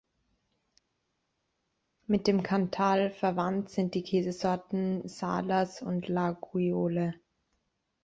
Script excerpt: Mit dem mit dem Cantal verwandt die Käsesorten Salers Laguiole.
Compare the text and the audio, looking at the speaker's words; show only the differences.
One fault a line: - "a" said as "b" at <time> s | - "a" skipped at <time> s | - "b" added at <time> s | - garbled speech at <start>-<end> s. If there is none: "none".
- "mit dem" skipped at 2.4 s
- "sind" added at 3.7 s
- "und" added at 5.8 s